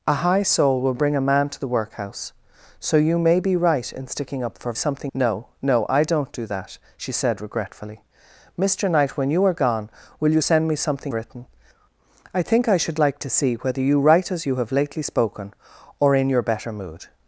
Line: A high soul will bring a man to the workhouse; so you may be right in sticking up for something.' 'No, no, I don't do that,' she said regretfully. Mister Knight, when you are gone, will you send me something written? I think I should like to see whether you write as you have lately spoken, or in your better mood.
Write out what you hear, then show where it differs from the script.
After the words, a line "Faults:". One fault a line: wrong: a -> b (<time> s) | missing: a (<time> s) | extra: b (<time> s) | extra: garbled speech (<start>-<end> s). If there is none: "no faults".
A high soul will bring a man to the workhouse; so you may be right in sticking up for something.' 'No, no, I don't do that,' she said regretfully. Mister Knight, when you are gone, will you send me something written? I think I should like to see whether you write as you have lately spoken, or in your better mood.
Faults:
no faults